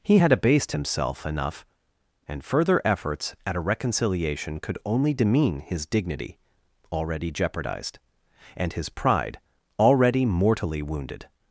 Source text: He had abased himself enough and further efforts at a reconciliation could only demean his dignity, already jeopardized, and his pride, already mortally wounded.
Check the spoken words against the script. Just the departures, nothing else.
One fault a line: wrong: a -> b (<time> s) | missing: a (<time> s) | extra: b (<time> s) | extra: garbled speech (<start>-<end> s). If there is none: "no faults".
no faults